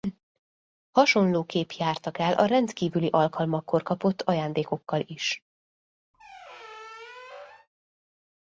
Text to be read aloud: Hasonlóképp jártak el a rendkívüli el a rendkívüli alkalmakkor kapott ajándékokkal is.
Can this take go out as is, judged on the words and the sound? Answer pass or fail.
fail